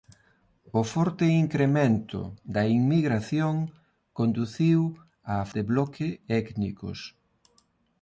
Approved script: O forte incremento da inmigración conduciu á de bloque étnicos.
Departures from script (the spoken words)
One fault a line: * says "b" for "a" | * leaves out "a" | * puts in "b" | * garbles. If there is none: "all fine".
all fine